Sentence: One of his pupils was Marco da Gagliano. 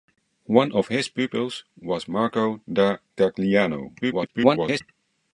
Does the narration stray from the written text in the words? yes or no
yes